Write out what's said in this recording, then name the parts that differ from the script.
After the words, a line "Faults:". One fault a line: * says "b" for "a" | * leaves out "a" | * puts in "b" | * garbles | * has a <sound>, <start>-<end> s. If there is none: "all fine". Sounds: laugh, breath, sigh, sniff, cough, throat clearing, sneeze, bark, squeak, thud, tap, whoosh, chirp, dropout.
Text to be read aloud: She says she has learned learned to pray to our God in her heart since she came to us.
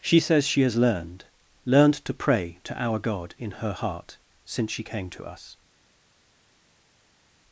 She says she has learned learned to pray to our God in her heart since she came to us.
Faults:
all fine